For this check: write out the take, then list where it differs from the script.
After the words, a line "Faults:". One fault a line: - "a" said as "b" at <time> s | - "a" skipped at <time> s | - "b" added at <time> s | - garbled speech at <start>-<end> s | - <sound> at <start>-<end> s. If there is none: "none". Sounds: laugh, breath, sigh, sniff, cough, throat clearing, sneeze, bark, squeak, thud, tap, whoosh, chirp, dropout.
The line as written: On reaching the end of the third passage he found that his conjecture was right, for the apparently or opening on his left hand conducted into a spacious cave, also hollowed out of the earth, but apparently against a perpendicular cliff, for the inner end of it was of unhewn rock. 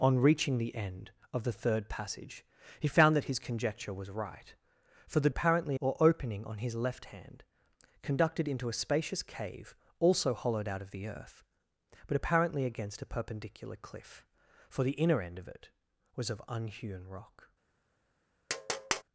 On reaching the end of the third passage he found that his conjecture was right, for the apparently or opening on his left hand conducted into a spacious cave, also hollowed out of the earth, but apparently against a perpendicular cliff, for the inner end of it was of unhewn rock.
Faults:
- tap at 18.5-19.0 s